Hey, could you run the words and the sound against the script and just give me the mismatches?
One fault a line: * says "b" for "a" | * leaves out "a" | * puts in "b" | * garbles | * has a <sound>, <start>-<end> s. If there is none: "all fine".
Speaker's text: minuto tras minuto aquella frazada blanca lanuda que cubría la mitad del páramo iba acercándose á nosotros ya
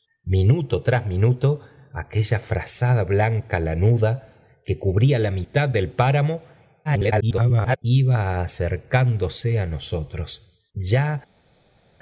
* garbles